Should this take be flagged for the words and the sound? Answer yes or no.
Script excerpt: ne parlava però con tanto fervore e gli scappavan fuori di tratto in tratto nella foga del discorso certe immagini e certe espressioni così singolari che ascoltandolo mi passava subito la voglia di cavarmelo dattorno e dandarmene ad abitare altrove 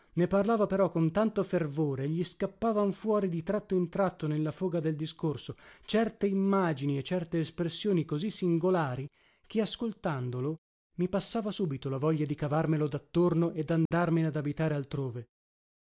yes